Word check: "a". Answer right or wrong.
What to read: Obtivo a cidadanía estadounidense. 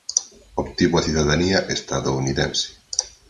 right